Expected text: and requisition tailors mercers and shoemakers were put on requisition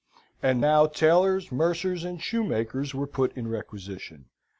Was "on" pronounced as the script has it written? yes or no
no